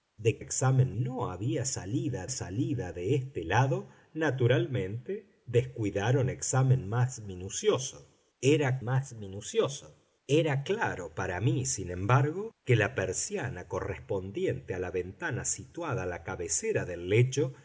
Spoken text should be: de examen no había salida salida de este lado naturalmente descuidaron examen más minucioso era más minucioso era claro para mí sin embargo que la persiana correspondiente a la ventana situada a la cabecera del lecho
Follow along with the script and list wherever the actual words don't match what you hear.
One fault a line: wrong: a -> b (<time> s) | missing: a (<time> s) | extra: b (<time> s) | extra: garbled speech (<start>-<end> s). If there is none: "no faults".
no faults